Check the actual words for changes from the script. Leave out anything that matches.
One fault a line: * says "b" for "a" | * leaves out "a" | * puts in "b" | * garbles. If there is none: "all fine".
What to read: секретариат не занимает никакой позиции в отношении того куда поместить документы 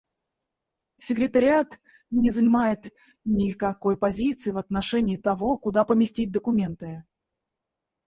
all fine